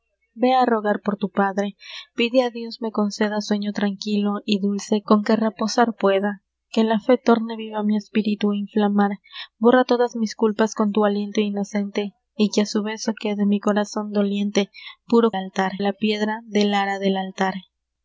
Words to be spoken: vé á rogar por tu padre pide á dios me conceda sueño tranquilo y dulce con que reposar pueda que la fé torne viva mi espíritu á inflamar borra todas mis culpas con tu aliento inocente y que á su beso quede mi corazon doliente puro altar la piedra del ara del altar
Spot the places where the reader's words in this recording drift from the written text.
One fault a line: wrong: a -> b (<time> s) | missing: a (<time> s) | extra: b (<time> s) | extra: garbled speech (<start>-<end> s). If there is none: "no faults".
no faults